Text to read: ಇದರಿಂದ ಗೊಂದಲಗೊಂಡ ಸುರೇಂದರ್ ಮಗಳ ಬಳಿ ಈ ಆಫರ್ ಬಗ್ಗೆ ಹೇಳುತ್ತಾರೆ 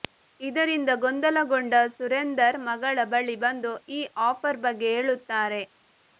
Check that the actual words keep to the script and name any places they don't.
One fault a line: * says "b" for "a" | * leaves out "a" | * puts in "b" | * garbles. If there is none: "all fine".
* puts in "ಬಂದು"